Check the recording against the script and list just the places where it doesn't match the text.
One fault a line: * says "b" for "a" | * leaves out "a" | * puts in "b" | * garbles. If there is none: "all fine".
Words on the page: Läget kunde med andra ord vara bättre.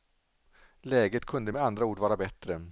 all fine